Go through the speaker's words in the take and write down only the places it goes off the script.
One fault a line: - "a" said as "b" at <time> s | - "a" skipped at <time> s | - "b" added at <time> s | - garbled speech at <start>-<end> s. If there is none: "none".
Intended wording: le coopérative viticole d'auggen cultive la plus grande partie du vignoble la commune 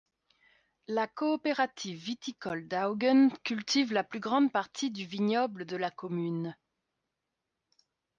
- "le" said as "la" at 0.9 s
- "de" added at 5.7 s